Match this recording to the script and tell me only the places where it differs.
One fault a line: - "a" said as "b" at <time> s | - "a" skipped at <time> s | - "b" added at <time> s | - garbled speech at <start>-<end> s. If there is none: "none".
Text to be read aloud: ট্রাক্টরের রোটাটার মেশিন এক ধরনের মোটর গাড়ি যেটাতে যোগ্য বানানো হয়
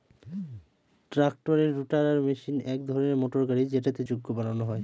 none